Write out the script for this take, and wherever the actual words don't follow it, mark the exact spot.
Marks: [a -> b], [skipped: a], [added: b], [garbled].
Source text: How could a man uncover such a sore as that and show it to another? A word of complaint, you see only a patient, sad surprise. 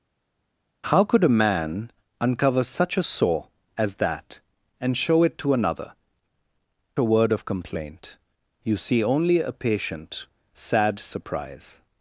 How could a man uncover such a sore as that and show it to another? A word of complaint, you see only a patient, sad surprise.